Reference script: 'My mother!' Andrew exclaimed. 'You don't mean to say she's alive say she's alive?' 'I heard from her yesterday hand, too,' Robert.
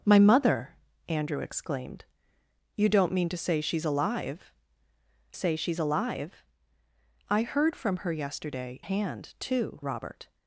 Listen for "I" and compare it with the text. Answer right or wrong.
right